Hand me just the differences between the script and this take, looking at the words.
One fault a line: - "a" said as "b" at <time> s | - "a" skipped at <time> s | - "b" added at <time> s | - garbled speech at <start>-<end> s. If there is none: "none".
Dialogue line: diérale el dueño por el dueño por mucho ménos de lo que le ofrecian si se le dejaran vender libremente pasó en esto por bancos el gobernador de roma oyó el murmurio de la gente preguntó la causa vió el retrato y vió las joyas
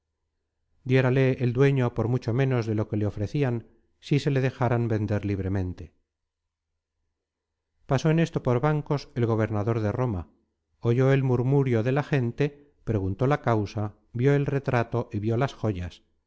- "el dueño por" skipped at 2.1 s